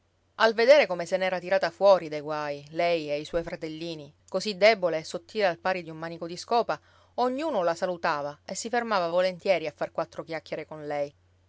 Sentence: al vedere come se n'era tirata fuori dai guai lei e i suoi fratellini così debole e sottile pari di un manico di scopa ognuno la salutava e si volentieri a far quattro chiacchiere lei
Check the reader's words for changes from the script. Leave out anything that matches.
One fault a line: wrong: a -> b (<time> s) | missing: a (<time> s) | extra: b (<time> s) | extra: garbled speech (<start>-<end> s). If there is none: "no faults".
extra: al (5.5 s)
extra: fermava (8.7 s)
extra: con (10.6 s)